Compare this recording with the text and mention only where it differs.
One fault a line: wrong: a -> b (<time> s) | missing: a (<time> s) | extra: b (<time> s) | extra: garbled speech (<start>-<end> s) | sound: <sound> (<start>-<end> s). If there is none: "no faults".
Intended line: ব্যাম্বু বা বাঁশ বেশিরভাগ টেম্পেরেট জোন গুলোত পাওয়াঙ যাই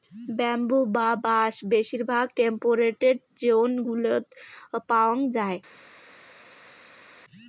no faults